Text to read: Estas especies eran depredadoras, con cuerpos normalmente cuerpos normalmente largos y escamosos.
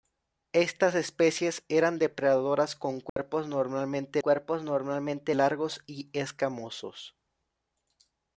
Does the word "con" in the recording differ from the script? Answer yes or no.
no